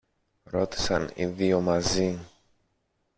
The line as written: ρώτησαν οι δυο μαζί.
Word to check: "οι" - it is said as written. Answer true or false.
true